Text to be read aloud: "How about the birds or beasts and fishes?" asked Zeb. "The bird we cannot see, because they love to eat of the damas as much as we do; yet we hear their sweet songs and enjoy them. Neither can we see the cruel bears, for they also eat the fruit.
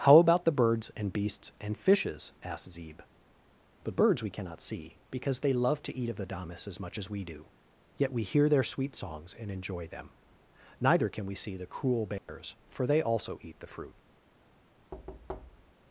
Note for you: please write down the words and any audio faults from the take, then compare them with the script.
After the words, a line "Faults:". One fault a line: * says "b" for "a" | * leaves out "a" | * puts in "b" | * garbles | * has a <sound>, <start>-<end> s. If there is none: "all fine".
"How about the birds and beasts and fishes?" asked Zeb. "The birds we cannot see, because they love to eat of the damas as much as we do; yet we hear their sweet songs and enjoy them. Neither can we see the cruel bears, for they also eat the fruit.
Faults:
* says "and" for "or"
* says "birds" for "bird"
* has a dropout, 12.2-12.3 s
* has a thud, 14.9-15.7 s